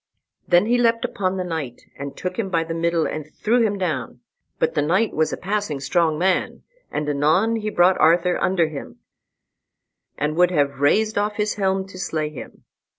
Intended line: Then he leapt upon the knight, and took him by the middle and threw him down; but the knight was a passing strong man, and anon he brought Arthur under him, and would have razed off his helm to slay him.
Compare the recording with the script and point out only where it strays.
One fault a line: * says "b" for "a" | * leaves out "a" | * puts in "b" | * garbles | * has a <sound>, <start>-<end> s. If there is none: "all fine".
all fine